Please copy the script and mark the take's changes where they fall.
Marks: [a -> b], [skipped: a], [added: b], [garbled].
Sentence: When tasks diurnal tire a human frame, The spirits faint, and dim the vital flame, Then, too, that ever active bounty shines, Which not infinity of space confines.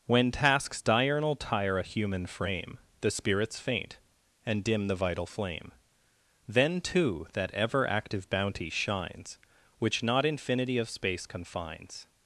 When tasks diurnal tire a human frame, The spirits faint, and dim the vital flame, Then, too, that ever active bounty shines, Which not infinity of space confines.